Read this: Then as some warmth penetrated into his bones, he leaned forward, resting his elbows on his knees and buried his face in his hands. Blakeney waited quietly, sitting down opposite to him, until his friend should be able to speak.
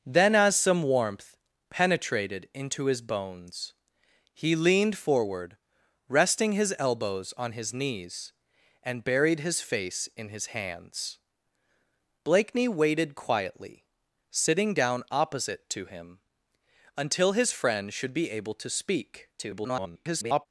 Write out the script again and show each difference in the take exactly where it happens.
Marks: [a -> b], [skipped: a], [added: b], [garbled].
Then as some warmth penetrated into his bones, he leaned forward, resting his elbows on his knees and buried his face in his hands. Blakeney waited quietly, sitting down opposite to him, until his friend should be able to speak. [garbled]